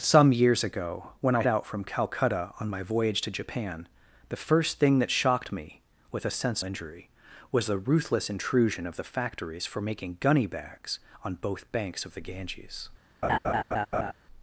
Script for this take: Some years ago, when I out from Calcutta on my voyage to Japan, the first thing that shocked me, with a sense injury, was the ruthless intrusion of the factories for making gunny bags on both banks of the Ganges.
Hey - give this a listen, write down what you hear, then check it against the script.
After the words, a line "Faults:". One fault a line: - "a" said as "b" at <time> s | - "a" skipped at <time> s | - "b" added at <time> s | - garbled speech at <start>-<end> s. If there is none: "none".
Some years ago, when I out from Calcutta on my voyage to Japan, the first thing that shocked me, with a sense injury, was the ruthless intrusion of the factories for making gunny bags on both banks of the Ganges.
Faults:
none